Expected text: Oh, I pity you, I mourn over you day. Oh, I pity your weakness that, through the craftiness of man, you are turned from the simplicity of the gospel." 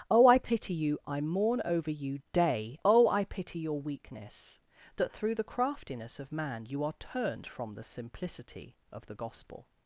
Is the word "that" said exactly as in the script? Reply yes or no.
yes